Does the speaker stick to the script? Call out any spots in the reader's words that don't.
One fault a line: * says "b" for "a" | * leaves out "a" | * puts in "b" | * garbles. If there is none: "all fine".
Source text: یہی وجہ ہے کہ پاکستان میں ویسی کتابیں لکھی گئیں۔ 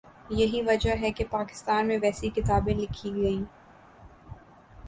all fine